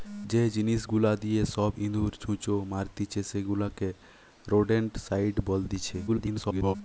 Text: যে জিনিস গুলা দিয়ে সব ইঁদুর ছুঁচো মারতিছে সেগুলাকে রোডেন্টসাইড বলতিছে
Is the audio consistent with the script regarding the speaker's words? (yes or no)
no